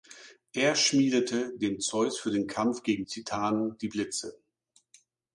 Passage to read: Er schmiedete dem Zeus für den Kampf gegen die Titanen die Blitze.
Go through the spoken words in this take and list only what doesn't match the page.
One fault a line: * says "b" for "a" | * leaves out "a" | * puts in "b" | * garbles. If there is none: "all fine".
* leaves out "die"